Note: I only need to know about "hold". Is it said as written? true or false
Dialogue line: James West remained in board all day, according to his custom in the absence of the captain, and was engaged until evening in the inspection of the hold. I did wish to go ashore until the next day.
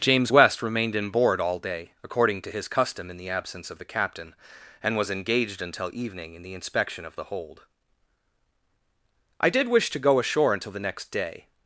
true